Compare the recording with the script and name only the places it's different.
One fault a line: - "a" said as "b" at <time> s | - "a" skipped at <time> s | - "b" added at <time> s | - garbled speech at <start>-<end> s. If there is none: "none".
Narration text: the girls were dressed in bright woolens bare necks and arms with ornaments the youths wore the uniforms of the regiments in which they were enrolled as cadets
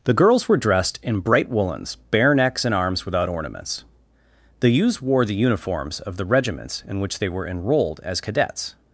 - "with" said as "without" at 3.0 s